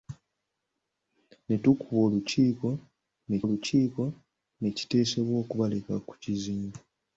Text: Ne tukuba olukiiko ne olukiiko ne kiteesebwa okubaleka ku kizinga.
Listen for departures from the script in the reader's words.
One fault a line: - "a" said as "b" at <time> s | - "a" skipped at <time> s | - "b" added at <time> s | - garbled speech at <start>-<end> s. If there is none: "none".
none